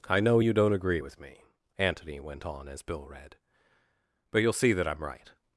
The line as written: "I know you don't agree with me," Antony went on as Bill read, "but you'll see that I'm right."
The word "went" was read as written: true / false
true